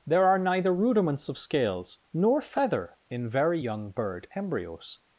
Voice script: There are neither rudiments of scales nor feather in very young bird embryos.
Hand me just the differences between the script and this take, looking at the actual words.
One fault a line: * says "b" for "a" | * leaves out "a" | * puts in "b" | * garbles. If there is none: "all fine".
all fine